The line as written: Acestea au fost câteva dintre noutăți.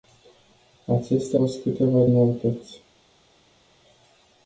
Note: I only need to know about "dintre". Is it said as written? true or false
false